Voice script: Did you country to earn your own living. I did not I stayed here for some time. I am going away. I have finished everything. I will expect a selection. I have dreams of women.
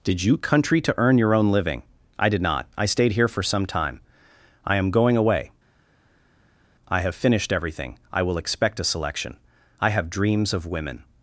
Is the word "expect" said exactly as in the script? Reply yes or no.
yes